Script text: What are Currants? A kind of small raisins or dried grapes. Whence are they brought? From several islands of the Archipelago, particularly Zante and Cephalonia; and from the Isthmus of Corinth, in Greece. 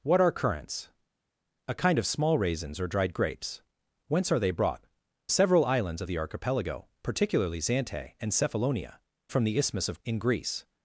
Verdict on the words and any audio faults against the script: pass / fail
fail